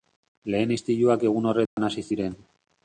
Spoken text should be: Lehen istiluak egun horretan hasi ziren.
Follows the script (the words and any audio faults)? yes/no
no